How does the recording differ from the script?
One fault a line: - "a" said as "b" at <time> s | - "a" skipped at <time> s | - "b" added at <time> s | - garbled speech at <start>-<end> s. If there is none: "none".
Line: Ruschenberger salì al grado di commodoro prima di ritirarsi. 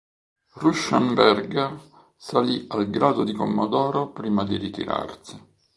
none